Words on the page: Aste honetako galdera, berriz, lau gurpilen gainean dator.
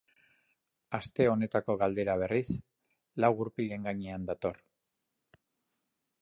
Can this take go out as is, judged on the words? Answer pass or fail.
pass